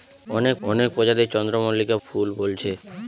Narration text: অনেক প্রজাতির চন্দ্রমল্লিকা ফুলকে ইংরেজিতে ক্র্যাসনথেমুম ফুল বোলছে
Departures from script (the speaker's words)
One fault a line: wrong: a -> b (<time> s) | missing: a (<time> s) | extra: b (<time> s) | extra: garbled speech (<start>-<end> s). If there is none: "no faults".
extra: অনেক (0.6 s)
missing: ফুলকে ইংরেজিতে ক্র্যাসনথেমুম (2.0 s)